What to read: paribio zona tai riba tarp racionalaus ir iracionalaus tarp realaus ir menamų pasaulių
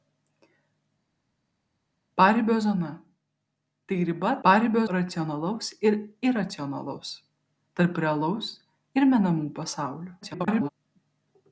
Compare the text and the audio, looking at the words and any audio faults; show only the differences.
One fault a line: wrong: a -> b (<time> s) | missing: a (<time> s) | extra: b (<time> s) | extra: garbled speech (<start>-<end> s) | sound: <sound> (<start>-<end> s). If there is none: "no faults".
wrong: tarp -> paribio (4.5 s)
extra: garbled speech (10.2-10.7 s)